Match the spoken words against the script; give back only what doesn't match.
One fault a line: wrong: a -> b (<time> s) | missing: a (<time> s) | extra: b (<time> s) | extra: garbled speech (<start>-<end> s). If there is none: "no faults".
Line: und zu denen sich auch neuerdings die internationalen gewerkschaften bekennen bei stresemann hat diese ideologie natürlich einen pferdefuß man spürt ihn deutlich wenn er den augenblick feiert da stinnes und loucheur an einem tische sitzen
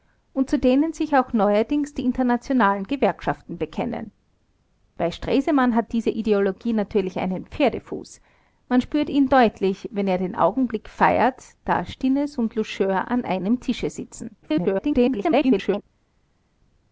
extra: garbled speech (14.4-15.8 s)